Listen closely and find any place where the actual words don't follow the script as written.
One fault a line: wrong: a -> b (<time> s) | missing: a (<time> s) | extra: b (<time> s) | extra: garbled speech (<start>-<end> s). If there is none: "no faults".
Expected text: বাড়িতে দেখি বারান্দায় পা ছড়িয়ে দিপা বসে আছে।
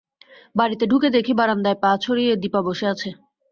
extra: ঢুকে (0.9 s)